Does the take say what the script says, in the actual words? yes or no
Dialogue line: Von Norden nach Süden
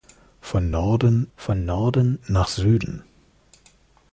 no